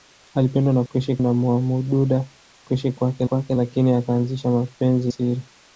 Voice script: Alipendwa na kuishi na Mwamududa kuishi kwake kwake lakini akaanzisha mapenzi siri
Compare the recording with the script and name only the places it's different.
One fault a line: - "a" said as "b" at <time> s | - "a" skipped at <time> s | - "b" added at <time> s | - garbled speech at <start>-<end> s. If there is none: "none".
none